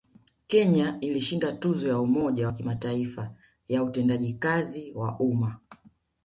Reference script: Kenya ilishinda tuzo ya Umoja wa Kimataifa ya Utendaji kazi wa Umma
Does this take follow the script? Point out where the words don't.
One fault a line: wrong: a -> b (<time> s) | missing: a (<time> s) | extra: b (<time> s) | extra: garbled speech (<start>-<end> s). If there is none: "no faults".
no faults